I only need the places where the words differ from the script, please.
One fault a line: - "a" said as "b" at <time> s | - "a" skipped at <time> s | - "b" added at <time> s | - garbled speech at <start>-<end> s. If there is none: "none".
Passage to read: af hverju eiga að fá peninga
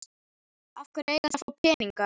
none